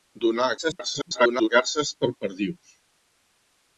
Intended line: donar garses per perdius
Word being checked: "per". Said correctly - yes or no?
yes